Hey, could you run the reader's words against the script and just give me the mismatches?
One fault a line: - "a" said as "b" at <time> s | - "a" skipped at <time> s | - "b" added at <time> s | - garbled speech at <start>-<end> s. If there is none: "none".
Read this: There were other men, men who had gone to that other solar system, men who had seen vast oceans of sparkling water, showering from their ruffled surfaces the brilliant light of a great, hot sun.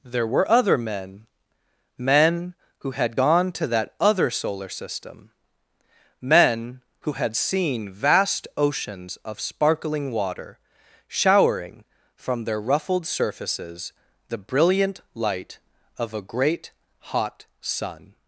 none